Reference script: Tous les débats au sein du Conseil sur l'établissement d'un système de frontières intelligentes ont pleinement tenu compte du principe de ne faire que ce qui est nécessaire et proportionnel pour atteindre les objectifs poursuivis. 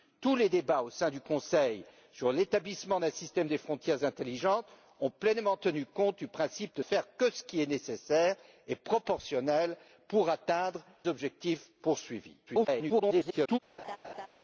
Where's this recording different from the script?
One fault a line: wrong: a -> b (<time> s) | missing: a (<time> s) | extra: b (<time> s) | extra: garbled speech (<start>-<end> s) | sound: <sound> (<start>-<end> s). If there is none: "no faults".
missing: ne (6.8 s)
missing: les (10.8 s)
extra: garbled speech (12.5-13.6 s)
sound: laugh (13.8-14.3 s)